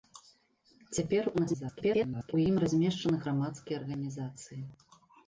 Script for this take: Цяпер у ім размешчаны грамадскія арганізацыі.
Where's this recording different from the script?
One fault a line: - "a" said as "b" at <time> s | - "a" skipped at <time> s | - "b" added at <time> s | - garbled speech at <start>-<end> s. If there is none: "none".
- garbled speech at 1.3-2.3 s